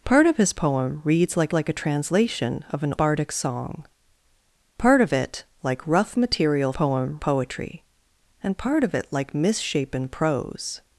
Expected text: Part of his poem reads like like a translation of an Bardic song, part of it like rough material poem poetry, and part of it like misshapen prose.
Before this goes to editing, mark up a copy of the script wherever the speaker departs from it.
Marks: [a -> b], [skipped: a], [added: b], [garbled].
Part of his poem reads like like a translation of an Bardic song, part of it like rough material poem poetry, and part of it like misshapen prose.